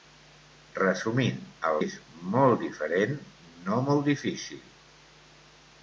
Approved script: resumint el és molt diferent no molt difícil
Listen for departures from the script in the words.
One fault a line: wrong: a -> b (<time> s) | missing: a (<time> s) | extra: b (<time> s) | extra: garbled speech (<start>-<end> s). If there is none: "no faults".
no faults